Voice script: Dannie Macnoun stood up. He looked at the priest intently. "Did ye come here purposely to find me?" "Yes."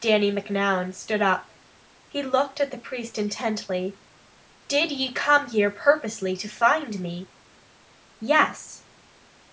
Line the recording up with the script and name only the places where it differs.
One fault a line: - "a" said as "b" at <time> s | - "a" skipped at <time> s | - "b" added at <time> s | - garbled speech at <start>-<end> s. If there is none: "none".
none